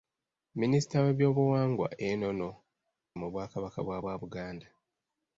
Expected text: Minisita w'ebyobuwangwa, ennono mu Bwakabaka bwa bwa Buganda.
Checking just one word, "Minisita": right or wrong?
right